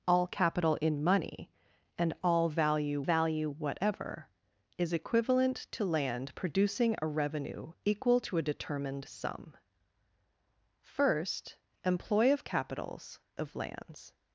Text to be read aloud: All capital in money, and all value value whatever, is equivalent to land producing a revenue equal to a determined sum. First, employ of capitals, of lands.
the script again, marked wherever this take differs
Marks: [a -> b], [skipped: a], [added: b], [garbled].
All capital in money, and all value value whatever, is equivalent to land producing a revenue equal to a determined sum. First, employ of capitals, of lands.